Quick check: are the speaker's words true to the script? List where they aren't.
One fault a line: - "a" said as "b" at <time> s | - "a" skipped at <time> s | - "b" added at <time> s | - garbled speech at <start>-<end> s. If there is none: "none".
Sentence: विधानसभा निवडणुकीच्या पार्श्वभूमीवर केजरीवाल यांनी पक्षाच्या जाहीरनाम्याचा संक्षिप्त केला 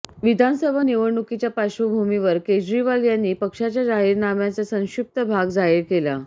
- "भाग जाहीर" added at 5.2 s